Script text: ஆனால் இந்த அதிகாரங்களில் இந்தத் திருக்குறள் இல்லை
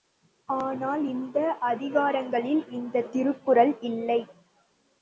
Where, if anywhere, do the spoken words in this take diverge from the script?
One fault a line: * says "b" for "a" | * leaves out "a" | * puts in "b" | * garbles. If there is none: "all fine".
all fine